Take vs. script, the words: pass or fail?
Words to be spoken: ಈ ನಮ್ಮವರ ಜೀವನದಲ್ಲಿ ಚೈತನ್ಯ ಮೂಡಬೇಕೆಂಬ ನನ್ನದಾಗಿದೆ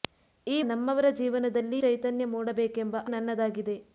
pass